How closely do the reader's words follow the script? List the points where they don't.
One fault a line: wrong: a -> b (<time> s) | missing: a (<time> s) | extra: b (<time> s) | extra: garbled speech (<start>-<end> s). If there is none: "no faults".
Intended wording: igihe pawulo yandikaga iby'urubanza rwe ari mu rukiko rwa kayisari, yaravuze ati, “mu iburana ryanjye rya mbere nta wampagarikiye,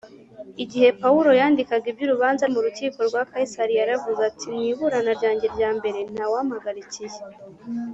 missing: rwe ari (2.4 s)